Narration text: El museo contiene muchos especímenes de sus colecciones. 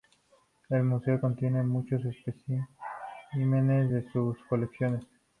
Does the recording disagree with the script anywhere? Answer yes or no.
no